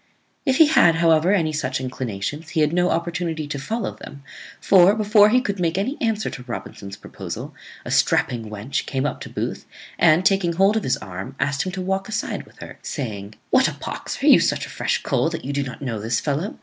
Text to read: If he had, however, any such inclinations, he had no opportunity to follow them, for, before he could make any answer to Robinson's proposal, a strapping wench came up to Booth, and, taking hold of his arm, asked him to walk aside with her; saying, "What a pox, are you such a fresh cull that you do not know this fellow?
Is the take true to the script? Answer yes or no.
yes